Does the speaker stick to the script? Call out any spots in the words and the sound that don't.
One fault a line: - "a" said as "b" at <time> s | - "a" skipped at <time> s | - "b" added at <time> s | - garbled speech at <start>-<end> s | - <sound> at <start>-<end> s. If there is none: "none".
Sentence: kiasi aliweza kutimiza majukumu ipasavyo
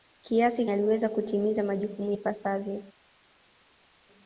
none